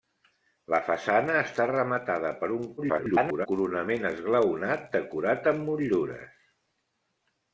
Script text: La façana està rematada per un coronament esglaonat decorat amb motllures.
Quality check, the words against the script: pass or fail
fail